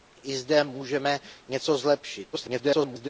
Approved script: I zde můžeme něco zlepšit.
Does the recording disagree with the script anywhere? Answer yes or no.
yes